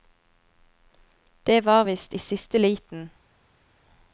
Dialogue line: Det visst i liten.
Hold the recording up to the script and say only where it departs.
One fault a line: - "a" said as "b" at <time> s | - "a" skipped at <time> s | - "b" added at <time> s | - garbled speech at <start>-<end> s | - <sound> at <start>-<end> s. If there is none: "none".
- "var" added at 1.6 s
- "siste" added at 2.2 s